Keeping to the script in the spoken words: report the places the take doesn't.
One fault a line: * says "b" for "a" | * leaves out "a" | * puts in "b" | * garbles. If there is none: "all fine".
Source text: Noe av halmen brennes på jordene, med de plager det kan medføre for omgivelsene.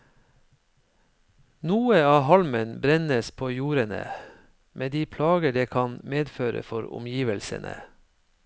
all fine